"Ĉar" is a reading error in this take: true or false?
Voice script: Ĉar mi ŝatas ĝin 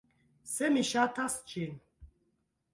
true